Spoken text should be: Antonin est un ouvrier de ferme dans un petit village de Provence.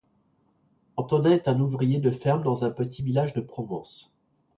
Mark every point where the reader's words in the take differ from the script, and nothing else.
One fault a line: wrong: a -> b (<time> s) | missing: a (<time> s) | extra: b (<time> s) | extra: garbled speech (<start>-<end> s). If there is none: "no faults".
no faults